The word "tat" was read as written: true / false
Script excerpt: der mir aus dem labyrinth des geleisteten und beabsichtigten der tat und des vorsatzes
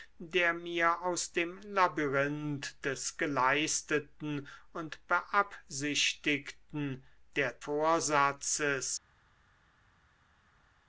false